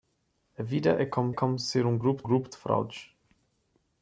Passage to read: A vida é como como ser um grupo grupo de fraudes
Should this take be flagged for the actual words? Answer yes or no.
no